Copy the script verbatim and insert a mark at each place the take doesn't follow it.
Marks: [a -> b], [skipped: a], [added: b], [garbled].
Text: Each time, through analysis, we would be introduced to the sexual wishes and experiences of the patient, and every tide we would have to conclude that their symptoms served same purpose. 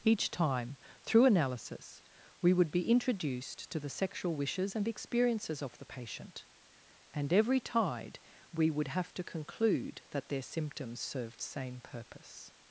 Each time, through analysis, we would be introduced to the sexual wishes and experiences of the patient, and every tide we would have to conclude that their symptoms served same purpose.